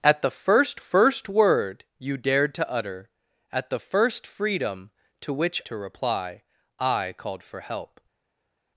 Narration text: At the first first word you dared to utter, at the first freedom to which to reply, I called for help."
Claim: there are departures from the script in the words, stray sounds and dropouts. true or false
false